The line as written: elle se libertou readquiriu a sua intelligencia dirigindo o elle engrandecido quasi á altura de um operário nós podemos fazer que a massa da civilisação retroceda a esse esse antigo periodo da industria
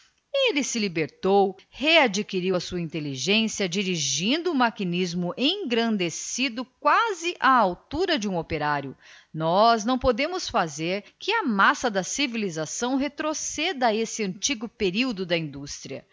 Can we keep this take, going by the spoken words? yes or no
no